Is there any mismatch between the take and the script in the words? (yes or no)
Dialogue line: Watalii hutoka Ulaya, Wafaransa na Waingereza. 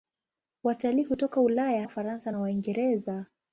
no